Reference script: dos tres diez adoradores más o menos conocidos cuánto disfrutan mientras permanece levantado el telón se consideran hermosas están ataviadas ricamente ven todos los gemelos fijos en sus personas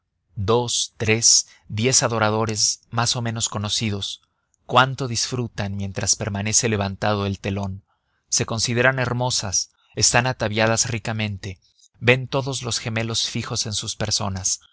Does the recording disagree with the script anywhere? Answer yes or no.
no